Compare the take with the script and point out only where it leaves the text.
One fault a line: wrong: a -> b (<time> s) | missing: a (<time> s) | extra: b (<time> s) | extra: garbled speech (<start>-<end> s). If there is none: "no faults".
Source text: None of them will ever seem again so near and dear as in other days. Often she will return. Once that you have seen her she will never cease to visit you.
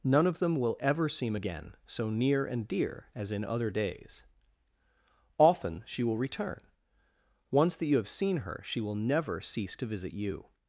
no faults